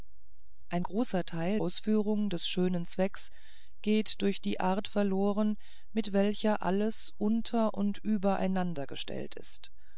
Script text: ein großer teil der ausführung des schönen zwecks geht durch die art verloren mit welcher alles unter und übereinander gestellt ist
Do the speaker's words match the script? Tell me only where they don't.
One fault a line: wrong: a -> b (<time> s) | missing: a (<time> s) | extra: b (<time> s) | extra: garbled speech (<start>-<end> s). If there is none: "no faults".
missing: der (1.6 s)